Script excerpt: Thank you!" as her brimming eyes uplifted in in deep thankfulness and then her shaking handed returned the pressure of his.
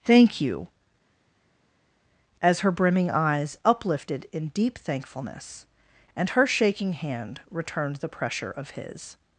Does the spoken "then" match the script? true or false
false